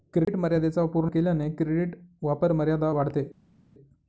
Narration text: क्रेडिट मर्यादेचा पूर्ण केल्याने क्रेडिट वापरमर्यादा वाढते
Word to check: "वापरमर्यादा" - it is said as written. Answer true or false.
true